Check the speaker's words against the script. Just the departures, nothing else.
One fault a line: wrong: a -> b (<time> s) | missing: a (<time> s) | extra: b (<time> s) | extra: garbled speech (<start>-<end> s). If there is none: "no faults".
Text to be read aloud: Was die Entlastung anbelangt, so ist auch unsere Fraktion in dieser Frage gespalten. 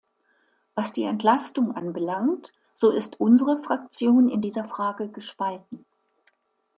missing: auch (3.2 s)